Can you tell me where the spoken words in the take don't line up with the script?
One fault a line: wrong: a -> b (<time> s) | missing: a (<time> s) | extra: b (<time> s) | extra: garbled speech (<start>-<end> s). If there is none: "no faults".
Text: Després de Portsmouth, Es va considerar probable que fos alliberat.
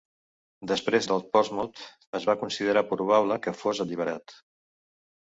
no faults